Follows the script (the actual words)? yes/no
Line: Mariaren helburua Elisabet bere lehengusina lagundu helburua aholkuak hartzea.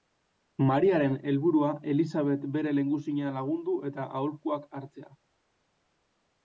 no